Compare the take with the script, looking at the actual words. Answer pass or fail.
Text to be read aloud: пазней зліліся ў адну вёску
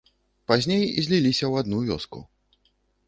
pass